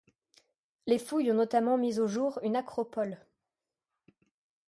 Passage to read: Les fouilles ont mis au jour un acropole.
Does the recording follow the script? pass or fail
fail